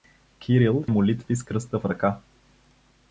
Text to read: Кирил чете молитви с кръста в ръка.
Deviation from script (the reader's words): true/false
true